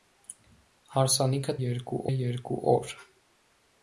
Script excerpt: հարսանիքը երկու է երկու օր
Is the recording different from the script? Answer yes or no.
no